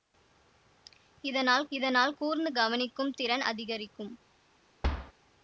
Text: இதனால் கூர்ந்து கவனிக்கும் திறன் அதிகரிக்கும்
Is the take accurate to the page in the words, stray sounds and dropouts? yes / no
no